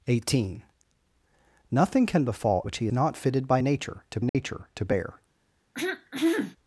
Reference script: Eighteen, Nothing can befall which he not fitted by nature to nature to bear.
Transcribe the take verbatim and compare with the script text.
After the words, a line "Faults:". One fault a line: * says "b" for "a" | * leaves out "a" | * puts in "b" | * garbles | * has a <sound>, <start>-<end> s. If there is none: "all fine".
Eighteen, Nothing can befall which he not fitted by nature to nature to bear.
Faults:
* has a dropout, 4.3-4.3 s
* has a throat clearing, 5.7-6.6 s